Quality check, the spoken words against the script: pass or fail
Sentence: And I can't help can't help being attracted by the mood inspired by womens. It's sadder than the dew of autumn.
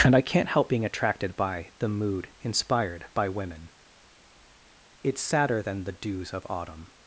fail